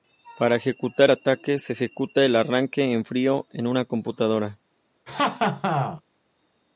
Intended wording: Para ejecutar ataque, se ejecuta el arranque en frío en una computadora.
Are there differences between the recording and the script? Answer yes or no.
no